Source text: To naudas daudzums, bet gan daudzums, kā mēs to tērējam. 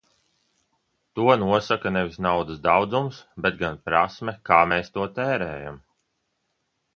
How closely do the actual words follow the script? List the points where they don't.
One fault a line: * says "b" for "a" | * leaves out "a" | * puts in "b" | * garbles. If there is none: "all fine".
* puts in "nosaka nevis"
* says "prasme" for "daudzums"